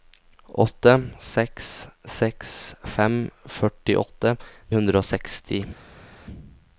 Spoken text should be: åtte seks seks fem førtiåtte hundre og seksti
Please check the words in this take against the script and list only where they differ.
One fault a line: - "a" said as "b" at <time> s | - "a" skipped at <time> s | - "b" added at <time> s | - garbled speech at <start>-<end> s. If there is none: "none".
none